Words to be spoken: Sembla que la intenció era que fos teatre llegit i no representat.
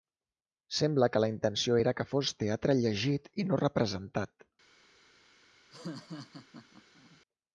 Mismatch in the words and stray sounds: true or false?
true